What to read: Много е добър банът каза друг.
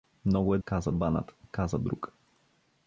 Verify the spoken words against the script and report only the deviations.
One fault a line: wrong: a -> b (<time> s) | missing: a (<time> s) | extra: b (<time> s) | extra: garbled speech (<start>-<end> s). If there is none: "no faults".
wrong: добър -> каза (0.6 s)